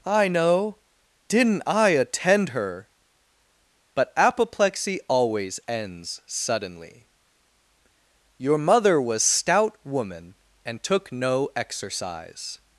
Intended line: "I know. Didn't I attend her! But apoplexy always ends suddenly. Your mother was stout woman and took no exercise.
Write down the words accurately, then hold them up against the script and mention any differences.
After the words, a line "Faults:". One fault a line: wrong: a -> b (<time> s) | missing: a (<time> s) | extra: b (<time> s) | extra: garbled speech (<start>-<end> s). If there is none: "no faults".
"I know. Didn't I attend her! But apoplexy always ends suddenly. Your mother was stout woman and took no exercise.
Faults:
no faults